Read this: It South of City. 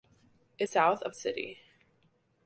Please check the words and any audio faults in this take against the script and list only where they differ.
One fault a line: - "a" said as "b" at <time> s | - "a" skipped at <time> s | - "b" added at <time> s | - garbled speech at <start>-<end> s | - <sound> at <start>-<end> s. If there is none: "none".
none